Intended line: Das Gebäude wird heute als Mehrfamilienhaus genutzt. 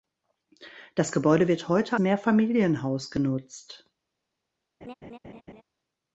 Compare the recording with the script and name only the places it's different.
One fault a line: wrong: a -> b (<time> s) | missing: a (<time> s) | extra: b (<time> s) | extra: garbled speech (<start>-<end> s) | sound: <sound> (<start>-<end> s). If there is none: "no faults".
missing: als (1.9 s)
sound: laugh (4.8-5.6 s)